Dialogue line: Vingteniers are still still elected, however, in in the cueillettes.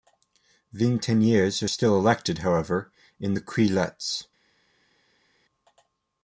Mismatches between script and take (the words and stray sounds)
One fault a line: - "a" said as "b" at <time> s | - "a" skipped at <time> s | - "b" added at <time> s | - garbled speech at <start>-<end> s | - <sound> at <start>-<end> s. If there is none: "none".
- "still" skipped at 2.0 s
- "in" skipped at 3.3 s